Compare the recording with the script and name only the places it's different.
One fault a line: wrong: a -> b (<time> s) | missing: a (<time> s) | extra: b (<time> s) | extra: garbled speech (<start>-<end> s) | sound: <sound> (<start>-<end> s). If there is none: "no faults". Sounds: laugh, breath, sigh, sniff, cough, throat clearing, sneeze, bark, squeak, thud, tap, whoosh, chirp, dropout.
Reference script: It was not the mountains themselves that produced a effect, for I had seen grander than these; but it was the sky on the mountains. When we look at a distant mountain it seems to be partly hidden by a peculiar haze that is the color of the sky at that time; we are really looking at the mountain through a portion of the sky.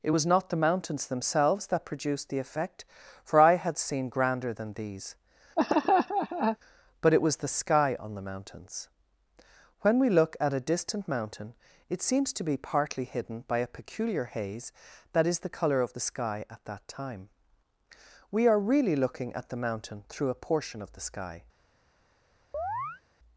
wrong: a -> the (2.3 s)
sound: laugh (5.6-6.6 s)
sound: chirp (22.5-23.0 s)